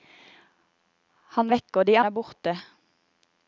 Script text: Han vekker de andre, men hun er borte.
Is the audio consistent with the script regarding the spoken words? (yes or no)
no